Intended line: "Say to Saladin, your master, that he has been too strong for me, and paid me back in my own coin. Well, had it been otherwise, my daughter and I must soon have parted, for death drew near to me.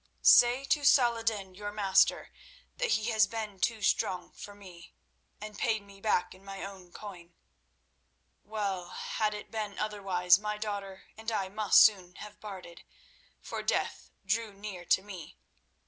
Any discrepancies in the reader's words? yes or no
no